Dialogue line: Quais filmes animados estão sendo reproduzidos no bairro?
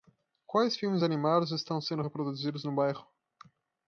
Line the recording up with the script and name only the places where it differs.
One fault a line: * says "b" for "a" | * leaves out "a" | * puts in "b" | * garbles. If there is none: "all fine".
all fine